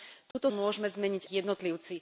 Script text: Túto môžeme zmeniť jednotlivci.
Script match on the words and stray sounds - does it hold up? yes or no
no